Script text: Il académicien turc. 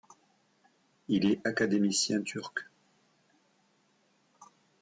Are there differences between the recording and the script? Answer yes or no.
yes